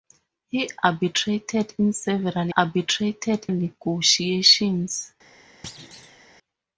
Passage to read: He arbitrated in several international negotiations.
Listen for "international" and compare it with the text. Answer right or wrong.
wrong